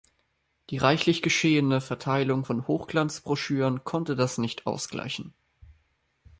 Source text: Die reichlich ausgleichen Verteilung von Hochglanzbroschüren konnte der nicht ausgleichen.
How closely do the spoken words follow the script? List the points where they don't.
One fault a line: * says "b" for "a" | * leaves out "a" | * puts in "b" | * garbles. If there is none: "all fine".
* says "geschehene" for "ausgleichen"
* says "das" for "der"